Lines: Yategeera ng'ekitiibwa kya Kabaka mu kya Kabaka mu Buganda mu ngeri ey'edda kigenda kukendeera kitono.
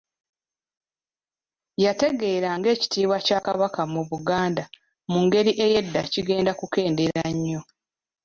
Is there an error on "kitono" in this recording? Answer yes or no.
yes